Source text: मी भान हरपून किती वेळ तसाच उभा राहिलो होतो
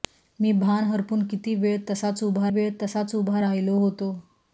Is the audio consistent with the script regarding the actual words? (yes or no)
no